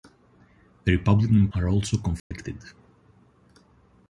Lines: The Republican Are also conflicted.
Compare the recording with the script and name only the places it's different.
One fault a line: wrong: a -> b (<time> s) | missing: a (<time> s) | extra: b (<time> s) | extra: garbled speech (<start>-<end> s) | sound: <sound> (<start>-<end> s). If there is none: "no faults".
sound: dropout (2.2-2.3 s)